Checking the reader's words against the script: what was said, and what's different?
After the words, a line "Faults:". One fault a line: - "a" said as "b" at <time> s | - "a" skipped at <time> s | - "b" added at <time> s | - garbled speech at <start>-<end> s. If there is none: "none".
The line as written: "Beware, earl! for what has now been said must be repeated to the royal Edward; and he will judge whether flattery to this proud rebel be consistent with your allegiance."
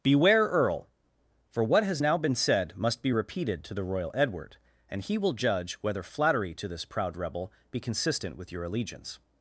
"Beware, earl! for what has now been said must be repeated to the royal Edward; and he will judge whether flattery to this proud rebel be consistent with your allegiance."
Faults:
none